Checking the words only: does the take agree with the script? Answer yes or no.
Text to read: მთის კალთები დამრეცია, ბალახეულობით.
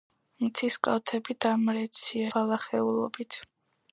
yes